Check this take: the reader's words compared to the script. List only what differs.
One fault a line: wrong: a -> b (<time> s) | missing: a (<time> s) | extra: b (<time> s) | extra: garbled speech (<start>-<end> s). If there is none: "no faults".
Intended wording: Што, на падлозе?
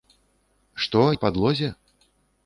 no faults